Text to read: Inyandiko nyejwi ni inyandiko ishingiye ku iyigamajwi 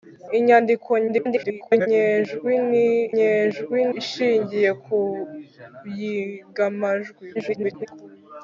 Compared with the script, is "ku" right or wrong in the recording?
right